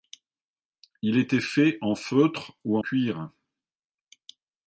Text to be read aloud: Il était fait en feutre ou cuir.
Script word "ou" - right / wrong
right